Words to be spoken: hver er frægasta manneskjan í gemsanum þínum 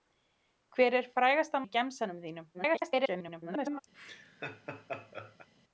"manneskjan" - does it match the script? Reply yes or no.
no